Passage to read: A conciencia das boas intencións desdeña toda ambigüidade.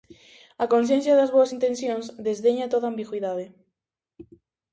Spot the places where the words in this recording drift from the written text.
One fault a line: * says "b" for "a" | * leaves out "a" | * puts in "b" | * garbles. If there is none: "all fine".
all fine